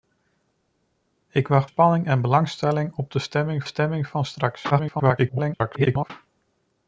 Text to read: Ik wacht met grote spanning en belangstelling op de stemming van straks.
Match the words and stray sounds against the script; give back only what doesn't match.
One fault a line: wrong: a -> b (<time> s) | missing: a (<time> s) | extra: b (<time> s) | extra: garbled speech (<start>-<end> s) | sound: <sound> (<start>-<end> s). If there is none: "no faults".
missing: met grote (1.7 s)
extra: stemming (3.6 s)
extra: garbled speech (4.7-6.1 s)